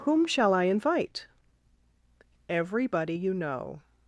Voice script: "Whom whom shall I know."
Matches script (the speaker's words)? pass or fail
fail